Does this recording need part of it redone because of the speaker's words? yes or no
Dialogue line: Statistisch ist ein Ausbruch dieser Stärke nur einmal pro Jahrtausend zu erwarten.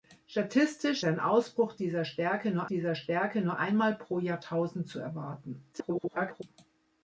yes